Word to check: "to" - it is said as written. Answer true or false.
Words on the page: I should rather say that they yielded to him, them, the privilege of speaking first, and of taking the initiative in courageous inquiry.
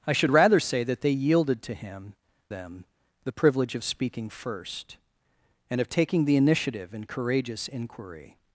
true